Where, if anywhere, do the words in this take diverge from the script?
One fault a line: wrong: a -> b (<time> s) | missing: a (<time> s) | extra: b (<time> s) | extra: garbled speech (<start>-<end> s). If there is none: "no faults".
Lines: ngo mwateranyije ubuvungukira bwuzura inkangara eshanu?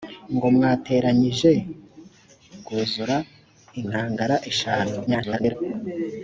missing: ubuvungukira (1.5 s)
extra: garbled speech (5.1-5.5 s)